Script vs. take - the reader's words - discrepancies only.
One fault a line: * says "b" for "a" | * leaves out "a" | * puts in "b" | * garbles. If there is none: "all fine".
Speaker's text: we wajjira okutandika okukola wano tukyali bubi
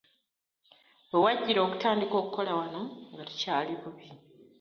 * puts in "nga"